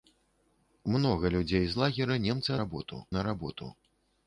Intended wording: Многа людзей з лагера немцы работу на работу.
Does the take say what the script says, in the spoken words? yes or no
yes